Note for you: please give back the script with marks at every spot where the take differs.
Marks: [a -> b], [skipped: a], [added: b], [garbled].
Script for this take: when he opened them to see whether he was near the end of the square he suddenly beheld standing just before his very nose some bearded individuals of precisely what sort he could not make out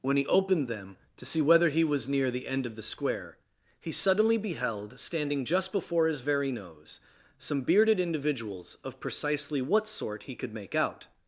when he opened them to see whether he was near the end of the square he suddenly beheld standing just before his very nose some bearded individuals of precisely what sort he could [skipped: not] make out